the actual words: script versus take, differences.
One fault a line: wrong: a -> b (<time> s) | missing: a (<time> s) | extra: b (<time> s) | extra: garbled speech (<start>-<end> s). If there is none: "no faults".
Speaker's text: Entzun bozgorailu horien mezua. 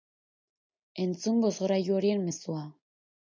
no faults